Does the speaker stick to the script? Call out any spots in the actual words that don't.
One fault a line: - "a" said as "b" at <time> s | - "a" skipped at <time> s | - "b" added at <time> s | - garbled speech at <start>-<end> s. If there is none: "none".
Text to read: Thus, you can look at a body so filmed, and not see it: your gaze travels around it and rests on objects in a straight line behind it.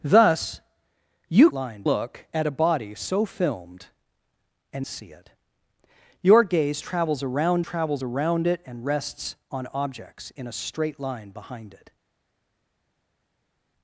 - "can" said as "line" at 1.5 s
- "not" skipped at 4.9 s
- "travels around" added at 7.6 s